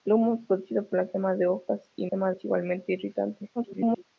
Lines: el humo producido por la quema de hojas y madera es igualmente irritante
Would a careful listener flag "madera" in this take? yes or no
yes